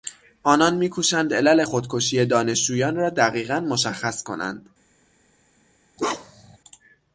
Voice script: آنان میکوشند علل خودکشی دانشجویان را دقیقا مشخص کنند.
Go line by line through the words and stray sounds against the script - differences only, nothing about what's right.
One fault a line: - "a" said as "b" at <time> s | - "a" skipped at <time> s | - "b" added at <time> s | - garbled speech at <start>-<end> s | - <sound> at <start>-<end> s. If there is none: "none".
- bark at 6.0-6.6 s